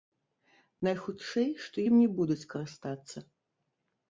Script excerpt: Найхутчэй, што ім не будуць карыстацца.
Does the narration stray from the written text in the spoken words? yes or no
no